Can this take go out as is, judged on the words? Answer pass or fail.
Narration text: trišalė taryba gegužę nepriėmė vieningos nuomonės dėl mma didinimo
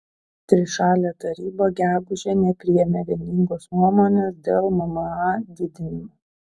pass